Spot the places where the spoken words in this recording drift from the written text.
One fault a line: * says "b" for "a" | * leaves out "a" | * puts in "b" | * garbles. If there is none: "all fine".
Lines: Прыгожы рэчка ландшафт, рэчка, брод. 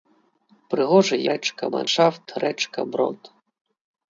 all fine